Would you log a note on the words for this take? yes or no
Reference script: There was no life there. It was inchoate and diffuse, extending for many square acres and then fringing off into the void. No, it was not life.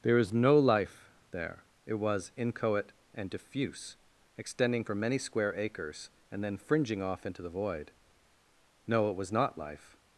yes